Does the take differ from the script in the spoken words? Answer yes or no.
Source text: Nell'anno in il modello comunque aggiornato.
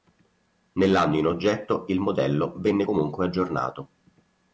yes